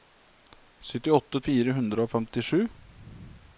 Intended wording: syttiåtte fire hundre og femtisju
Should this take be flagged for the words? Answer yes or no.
no